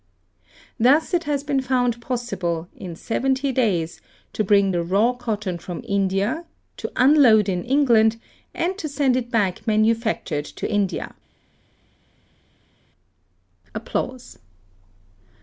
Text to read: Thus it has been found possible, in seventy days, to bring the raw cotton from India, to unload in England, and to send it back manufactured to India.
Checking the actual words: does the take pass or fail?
pass